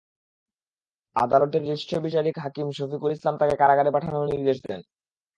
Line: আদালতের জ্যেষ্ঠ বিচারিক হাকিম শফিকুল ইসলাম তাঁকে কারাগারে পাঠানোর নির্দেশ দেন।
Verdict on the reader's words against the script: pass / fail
pass